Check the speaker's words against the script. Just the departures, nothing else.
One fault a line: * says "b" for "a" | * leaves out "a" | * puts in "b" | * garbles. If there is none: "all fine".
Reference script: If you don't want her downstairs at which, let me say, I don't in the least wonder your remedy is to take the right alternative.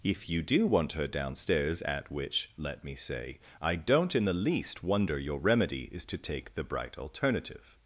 * says "do" for "don't"
* says "bright" for "right"